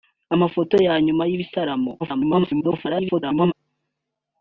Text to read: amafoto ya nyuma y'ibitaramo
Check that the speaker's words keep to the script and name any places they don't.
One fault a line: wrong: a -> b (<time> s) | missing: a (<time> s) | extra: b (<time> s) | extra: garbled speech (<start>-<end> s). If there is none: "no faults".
extra: garbled speech (2.0-3.5 s)